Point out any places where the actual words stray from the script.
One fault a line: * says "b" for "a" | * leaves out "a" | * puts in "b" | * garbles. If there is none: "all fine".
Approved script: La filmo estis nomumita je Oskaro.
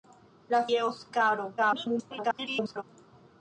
* leaves out "filmo estis nomumita"
* garbles